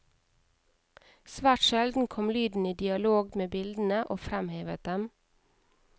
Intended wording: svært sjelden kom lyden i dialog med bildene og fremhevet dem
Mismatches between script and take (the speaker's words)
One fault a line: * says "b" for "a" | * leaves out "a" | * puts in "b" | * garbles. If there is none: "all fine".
all fine